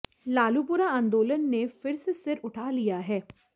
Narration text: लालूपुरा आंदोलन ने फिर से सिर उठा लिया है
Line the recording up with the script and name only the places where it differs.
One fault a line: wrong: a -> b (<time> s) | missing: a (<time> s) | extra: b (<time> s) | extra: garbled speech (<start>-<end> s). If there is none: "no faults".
no faults